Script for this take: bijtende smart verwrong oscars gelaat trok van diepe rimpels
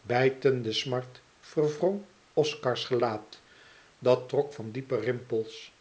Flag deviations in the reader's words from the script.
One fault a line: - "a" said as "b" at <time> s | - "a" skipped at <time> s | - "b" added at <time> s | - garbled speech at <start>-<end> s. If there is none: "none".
- "dat" added at 4.0 s